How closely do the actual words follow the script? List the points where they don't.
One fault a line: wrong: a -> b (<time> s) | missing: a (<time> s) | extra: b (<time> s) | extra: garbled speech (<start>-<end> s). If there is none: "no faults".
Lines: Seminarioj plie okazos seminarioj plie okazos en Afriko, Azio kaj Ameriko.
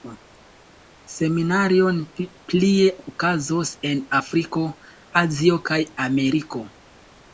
missing: seminarioj plie okazos (3.8 s)